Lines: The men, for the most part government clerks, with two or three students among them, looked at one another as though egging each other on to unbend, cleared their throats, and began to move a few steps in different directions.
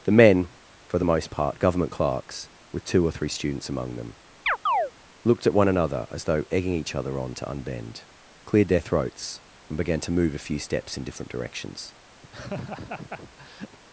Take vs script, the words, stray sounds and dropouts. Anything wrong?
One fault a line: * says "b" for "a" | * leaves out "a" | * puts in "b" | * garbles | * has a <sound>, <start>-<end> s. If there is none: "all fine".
* has a chirp, 4.5-4.9 s
* has a laugh, 12.2-13.8 s